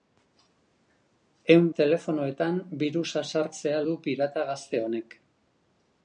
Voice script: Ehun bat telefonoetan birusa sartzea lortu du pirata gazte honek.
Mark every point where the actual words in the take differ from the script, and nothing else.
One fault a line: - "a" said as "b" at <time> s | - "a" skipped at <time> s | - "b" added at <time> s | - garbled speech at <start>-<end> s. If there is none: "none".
- "bat" skipped at 1.7 s
- "lortu" skipped at 3.8 s